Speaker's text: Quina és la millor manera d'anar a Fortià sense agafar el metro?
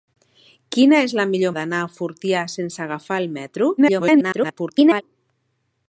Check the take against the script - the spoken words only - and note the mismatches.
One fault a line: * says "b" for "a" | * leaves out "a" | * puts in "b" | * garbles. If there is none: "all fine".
* leaves out "manera"
* garbles